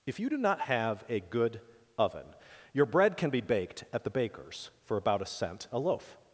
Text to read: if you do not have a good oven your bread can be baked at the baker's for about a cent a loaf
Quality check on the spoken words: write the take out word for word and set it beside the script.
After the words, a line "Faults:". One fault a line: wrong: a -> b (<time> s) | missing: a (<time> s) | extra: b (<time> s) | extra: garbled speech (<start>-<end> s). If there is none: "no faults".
if you do not have a good oven your bread can be baked at the baker's for about a cent a loaf
Faults:
no faults